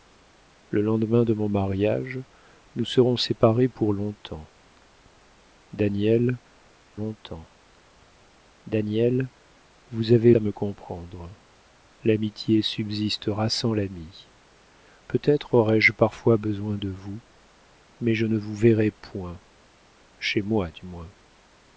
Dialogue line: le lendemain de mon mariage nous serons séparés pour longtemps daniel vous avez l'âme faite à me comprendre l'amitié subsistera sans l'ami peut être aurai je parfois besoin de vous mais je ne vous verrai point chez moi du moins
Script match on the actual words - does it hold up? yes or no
no